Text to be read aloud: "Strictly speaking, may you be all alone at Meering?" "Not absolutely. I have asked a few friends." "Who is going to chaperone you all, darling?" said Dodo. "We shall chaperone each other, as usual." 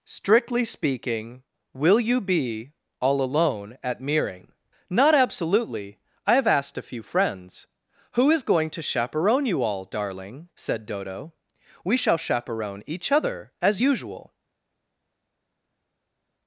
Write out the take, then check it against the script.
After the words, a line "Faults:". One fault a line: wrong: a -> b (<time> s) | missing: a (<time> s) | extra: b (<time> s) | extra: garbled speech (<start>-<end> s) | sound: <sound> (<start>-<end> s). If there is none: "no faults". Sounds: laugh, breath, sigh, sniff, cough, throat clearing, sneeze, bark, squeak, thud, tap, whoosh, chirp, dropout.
"Strictly speaking, will you be all alone at Meering?" "Not absolutely. I have asked a few friends." "Who is going to chaperone you all, darling?" said Dodo. "We shall chaperone each other, as usual."
Faults:
wrong: may -> will (1.8 s)